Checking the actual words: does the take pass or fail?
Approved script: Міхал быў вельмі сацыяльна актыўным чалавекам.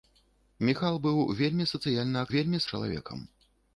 fail